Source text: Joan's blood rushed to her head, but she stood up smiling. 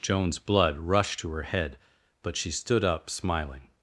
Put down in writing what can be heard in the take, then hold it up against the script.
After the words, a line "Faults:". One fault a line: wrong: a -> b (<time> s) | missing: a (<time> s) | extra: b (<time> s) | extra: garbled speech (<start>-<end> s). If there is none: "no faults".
Joan's blood rushed to her head, but she stood up smiling.
Faults:
no faults